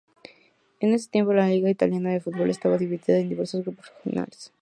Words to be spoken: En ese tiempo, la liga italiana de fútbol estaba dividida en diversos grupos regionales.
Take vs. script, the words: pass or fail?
pass